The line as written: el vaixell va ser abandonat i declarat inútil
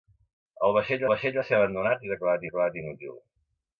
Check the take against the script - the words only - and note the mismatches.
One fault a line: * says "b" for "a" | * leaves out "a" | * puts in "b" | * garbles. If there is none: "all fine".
* puts in "vaixell"
* puts in "declarat"